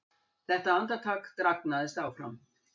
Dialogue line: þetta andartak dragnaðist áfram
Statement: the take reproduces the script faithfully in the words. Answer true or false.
true